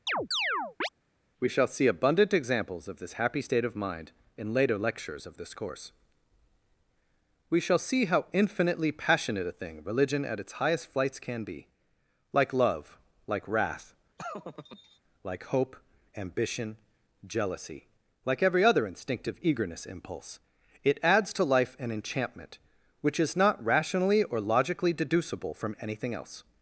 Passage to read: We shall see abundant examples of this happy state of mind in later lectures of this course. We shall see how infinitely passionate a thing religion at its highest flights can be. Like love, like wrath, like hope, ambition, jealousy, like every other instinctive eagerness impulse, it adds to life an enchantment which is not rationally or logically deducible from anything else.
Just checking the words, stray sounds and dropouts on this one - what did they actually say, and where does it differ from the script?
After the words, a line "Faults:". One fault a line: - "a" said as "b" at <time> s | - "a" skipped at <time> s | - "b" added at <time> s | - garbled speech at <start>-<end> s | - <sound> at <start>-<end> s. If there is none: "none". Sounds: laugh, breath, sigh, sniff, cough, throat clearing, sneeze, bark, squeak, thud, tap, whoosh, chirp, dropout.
We shall see abundant examples of this happy state of mind in later lectures of this course. We shall see how infinitely passionate a thing religion at its highest flights can be. Like love, like wrath, like hope, ambition, jealousy, like every other instinctive eagerness impulse, it adds to life an enchantment which is not rationally or logically deducible from anything else.
Faults:
- chirp at 0.1-0.9 s
- laugh at 14.2-15.0 s